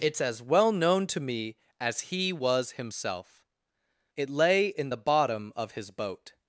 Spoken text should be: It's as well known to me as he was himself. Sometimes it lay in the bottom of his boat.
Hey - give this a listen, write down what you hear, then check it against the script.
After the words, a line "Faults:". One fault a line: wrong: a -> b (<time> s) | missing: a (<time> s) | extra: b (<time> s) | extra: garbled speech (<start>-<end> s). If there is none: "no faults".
It's as well known to me as he was himself. It lay in the bottom of his boat.
Faults:
missing: Sometimes (3.5 s)